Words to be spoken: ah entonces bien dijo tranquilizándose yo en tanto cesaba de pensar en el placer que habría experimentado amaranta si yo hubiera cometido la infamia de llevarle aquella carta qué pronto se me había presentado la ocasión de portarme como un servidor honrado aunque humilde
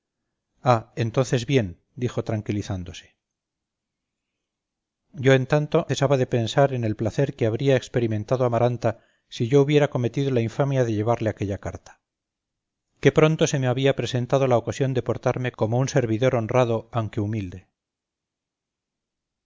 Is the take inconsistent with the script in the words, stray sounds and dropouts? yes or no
no